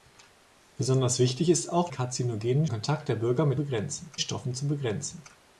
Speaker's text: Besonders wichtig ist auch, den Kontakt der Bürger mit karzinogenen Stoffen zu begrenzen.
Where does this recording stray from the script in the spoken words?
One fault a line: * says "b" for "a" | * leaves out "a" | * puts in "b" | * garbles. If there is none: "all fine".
* says "karzinogenen" for "den"
* says "begrenzen" for "karzinogenen"